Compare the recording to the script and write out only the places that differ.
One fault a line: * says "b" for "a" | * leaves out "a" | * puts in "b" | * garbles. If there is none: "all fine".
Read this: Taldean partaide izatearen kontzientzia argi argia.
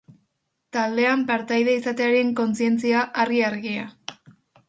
all fine